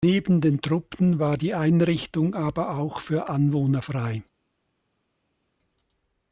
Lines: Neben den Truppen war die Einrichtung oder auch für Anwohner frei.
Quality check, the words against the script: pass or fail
fail